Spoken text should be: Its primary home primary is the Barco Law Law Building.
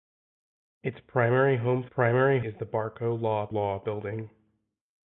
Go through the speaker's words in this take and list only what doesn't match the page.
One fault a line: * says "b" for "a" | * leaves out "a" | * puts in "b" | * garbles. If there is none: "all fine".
all fine